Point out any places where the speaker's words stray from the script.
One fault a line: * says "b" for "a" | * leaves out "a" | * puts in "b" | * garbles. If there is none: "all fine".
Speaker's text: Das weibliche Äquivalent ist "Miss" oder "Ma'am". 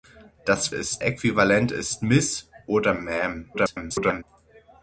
* says "ist" for "weibliche"
* garbles